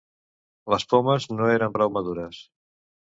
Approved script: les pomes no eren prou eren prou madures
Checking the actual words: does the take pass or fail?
fail